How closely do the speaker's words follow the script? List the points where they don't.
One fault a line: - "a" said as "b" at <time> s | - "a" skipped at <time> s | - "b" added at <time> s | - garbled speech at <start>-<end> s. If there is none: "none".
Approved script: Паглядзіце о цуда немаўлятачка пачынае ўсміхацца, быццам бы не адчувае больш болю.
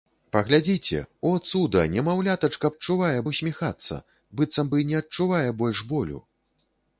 - "пачынае" said as "адчувае" at 2.7 s